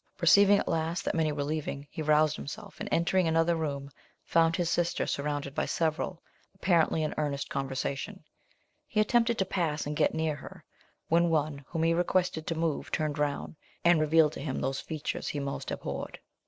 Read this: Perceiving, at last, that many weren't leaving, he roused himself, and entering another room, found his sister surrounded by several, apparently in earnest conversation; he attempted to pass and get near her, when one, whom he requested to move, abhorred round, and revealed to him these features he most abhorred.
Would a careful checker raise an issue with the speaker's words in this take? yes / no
yes